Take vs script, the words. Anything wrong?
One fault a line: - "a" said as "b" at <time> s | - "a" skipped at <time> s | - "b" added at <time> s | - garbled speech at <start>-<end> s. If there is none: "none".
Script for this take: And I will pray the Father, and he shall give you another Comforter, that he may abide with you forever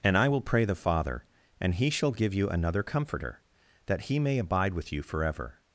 none